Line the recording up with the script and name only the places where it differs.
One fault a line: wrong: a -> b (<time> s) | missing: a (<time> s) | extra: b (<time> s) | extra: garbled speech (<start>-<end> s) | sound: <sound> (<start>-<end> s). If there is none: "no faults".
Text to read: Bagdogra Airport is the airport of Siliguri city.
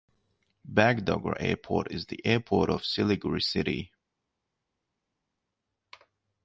no faults